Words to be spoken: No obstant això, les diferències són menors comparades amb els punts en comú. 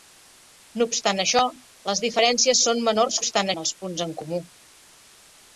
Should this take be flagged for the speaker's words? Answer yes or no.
yes